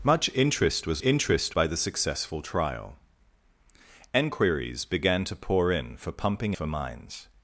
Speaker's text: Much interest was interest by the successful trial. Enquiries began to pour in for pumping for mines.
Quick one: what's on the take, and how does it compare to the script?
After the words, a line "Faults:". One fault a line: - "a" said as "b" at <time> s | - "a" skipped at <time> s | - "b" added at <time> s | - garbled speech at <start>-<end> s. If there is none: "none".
Much interest was interest by the successful trial. Enquiries began to pour in for pumping for mines.
Faults:
none